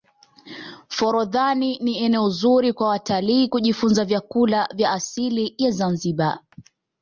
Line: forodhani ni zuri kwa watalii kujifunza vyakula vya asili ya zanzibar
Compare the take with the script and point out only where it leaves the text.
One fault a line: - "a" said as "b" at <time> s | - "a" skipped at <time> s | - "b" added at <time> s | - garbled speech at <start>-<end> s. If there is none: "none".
- "eneo" added at 2.0 s